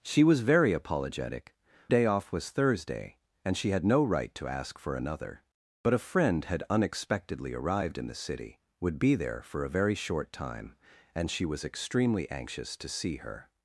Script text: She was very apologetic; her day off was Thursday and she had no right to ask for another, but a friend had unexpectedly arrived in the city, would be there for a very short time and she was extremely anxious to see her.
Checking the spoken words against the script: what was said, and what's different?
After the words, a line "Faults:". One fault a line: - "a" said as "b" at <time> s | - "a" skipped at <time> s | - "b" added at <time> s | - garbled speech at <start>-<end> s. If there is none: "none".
She was very apologetic; day off was Thursday and she had no right to ask for another, but a friend had unexpectedly arrived in the city, would be there for a very short time and she was extremely anxious to see her.
Faults:
- "her" skipped at 1.5 s